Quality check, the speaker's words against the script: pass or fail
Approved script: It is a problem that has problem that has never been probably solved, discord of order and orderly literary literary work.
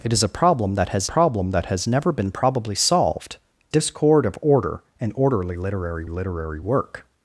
pass